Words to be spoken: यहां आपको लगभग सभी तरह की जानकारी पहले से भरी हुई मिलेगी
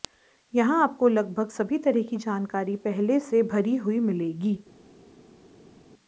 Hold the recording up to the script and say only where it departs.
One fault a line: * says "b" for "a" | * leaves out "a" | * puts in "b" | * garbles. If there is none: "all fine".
all fine